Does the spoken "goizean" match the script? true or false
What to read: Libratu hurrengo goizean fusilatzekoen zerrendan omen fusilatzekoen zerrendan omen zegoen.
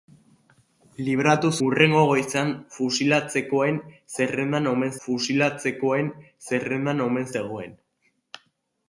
true